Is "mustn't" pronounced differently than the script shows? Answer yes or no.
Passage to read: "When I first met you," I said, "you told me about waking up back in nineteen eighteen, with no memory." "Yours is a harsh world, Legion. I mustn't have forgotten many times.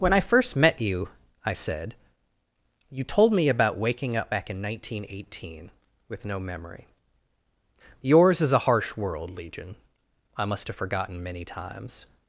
yes